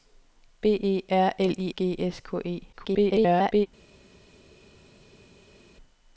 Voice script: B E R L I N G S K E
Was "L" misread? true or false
false